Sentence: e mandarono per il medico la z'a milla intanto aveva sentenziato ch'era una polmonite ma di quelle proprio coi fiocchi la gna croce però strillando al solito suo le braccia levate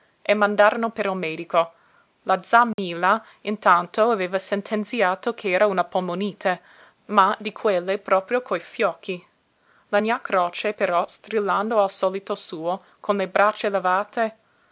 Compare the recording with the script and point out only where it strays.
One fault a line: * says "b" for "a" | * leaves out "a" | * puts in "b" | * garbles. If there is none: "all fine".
* puts in "con"